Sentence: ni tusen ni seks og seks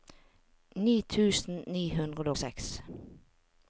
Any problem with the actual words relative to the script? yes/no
yes